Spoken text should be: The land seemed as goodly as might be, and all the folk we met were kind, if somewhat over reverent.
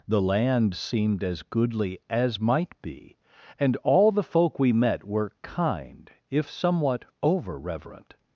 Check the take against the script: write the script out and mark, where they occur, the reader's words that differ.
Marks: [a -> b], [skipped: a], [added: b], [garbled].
The land seemed as goodly as might be, and all the folk we met were kind, if somewhat over reverent.